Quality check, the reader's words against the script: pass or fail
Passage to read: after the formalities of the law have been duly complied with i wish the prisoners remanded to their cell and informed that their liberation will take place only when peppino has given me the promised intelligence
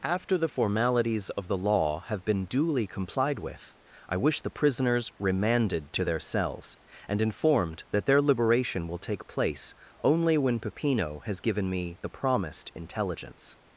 fail